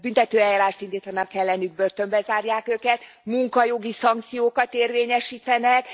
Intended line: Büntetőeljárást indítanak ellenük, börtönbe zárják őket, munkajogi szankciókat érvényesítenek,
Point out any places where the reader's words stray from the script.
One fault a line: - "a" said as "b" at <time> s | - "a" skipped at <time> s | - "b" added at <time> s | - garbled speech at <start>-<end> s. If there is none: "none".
none